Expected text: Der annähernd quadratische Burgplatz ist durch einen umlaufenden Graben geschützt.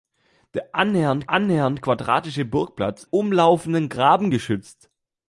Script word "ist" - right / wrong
wrong